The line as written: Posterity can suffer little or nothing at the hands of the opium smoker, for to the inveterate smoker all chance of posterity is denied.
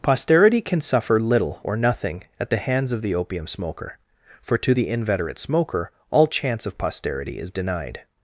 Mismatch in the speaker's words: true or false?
false